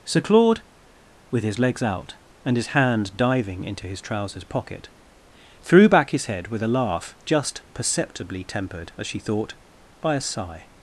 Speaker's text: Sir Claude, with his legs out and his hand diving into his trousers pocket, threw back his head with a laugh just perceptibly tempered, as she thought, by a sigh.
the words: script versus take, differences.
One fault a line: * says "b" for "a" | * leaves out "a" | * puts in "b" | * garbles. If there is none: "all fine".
all fine